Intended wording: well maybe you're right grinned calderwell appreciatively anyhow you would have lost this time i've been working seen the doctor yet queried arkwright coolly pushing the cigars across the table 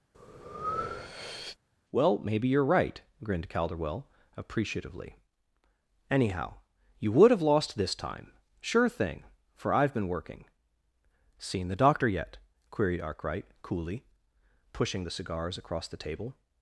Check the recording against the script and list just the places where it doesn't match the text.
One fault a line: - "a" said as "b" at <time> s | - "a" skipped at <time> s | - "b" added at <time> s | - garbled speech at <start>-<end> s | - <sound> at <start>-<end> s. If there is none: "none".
- breath at 0.1-1.6 s
- "sure thing for" added at 8.6 s